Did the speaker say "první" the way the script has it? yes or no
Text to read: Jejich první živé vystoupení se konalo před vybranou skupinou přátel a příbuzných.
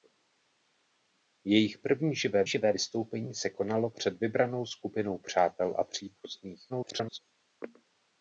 yes